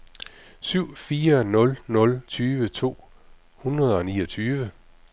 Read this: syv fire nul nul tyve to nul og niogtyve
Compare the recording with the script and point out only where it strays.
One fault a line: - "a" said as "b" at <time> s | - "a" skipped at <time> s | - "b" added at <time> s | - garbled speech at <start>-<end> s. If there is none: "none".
- "nul" said as "hundrede" at 3.6 s